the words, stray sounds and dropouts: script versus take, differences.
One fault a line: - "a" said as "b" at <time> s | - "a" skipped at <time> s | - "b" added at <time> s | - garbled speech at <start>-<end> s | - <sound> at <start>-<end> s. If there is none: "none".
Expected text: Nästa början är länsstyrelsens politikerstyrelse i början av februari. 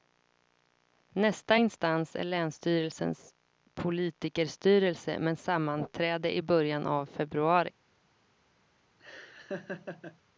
- "början" said as "instans" at 1.5 s
- "med sammanträde" added at 5.2 s
- laugh at 9.0-10.2 s